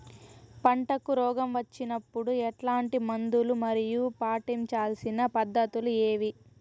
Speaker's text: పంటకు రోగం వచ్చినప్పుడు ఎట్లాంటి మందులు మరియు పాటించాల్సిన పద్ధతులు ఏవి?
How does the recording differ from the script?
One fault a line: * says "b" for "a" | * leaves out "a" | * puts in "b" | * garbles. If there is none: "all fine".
all fine